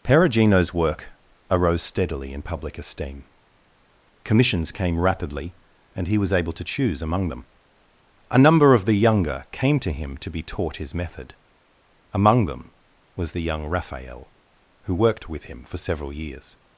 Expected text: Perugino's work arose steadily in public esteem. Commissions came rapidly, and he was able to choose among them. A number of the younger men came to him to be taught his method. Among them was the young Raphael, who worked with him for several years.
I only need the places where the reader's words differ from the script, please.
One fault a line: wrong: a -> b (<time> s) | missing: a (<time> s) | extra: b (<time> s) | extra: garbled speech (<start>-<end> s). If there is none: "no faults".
missing: men (9.4 s)